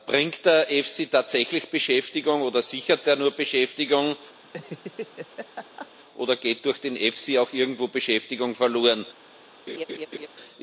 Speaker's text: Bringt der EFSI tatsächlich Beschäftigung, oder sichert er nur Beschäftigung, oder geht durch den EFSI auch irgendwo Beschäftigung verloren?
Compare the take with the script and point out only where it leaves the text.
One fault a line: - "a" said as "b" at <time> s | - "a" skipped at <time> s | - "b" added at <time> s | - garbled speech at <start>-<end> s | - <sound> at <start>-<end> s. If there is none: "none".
- laugh at 4.4-5.9 s
- laugh at 9.7-10.3 s